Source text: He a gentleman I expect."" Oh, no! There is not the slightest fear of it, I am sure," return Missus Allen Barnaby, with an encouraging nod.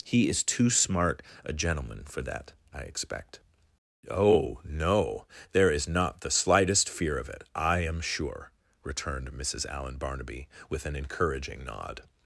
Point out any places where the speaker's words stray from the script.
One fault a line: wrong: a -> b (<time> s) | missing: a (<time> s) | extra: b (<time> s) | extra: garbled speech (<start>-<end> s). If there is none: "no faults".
extra: is too smart (0.3 s)
extra: for that (2.0 s)
wrong: return -> returned (8.8 s)